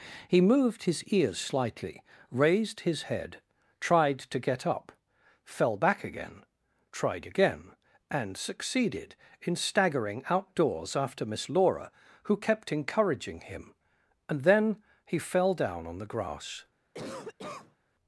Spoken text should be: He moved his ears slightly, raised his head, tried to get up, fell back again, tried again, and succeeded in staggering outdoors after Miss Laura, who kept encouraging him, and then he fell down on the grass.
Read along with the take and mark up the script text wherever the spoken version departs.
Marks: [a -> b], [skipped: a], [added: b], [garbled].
He moved his ears slightly, raised his head, tried to get up, fell back again, tried again, and succeeded in staggering outdoors after Miss Laura, who kept encouraging him, and then he fell down on the grass.